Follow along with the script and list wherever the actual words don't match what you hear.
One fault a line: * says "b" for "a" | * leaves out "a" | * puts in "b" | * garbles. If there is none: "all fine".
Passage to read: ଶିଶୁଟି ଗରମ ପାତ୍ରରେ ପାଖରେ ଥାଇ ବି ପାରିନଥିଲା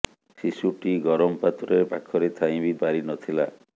all fine